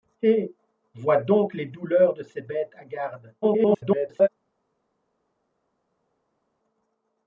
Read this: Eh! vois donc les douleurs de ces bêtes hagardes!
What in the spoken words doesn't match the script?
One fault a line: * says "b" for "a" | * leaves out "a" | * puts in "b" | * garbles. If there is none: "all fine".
* garbles